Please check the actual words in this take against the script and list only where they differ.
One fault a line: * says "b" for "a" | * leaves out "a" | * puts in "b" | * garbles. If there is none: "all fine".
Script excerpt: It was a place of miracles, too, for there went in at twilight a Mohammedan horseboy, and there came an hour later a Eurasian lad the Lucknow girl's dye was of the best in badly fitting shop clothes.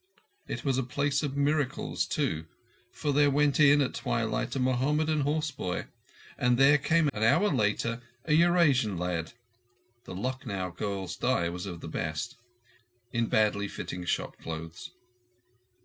all fine